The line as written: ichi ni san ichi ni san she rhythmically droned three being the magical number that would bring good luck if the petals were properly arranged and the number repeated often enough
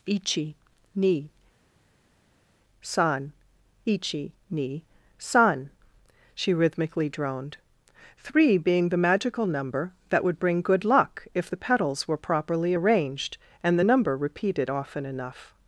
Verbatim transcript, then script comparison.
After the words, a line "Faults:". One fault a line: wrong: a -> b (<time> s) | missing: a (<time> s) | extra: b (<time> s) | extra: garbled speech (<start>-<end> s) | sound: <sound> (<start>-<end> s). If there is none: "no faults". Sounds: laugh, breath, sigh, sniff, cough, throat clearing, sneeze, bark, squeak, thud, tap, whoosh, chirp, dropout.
ichi ni san ichi ni san she rhythmically droned three being the magical number that would bring good luck if the petals were properly arranged and the number repeated often enough
Faults:
no faults